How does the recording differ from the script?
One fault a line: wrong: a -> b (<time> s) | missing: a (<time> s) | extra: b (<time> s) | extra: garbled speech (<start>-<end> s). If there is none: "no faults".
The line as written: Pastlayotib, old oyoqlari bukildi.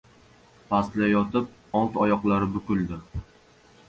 no faults